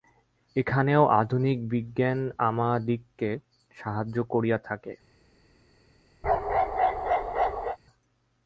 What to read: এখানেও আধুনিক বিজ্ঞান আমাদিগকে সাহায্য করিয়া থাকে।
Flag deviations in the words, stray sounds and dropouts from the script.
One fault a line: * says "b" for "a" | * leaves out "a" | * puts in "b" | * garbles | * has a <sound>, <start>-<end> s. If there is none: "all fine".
* has a bark, 6.2-7.8 s